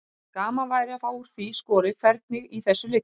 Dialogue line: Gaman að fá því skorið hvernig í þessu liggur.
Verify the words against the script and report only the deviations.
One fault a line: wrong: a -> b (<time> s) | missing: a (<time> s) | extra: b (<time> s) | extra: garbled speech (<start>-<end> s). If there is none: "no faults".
extra: væri (0.7 s)
extra: úr (1.2 s)